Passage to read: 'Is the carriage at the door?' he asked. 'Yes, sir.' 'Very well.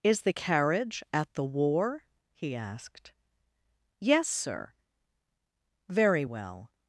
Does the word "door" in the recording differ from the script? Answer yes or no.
yes